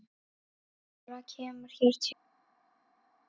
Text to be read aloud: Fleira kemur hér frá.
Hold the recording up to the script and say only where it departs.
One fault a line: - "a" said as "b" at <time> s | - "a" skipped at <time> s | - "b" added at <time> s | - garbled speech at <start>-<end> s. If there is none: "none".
- "frá" said as "til" at 1.9 s